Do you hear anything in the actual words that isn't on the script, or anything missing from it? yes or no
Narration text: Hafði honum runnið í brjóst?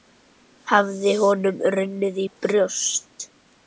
no